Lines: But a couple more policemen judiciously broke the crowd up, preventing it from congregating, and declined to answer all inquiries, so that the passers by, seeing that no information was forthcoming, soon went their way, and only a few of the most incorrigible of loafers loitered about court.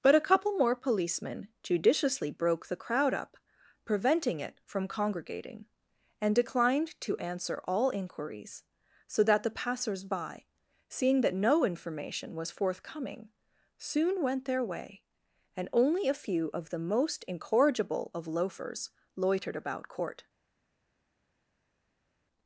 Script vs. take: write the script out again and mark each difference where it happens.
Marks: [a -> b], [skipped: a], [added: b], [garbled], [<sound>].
But a couple more policemen judiciously broke the crowd up, preventing it from congregating, and declined to answer all inquiries, so that the passers by, seeing that no information was forthcoming, soon went their way, and only a few of the most incorrigible of loafers loitered about court.